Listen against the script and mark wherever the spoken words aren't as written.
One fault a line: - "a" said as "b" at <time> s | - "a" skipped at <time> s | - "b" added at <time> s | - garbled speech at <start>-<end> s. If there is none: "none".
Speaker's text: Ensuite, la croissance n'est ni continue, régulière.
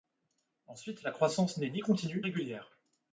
none